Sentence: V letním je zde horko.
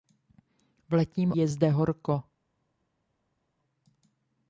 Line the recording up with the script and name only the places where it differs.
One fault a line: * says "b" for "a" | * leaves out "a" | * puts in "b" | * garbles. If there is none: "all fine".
all fine